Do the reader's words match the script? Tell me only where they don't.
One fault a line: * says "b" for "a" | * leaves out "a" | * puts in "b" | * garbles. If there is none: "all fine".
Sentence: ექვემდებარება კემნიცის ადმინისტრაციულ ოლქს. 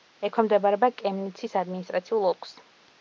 all fine